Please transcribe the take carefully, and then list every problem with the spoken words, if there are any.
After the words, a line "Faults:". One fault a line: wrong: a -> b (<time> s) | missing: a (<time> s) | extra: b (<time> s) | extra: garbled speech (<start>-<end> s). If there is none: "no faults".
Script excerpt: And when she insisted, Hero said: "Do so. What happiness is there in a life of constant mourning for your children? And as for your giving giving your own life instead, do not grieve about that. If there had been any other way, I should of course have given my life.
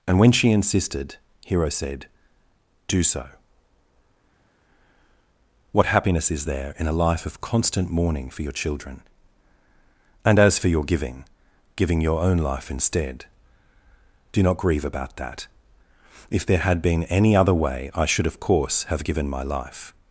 And when she insisted, Hero said: "Do so. What happiness is there in a life of constant mourning for your children? And as for your giving giving your own life instead, do not grieve about that. If there had been any other way, I should of course have given my life.
Faults:
no faults